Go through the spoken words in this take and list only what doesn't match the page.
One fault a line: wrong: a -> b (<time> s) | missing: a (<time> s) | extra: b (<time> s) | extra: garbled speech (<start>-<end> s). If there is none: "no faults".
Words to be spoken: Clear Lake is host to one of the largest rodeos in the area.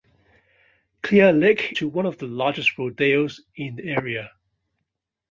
missing: is host (1.8 s)